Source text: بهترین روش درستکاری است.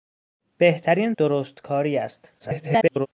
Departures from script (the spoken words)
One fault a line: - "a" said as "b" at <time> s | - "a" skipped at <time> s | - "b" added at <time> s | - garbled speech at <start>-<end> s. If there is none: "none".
- "روش" skipped at 1.1 s
- garbled speech at 2.4-3.1 s